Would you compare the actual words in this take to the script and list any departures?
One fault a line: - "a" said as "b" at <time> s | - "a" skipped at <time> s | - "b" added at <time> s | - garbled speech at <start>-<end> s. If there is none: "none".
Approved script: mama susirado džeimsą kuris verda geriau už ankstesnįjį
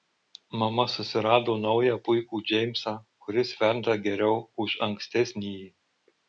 - "naują puikų" added at 1.6 s